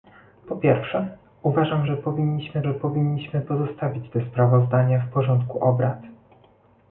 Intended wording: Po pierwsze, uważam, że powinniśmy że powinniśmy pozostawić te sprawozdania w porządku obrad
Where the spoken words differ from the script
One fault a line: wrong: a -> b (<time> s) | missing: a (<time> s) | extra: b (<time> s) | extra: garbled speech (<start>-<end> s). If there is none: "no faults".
no faults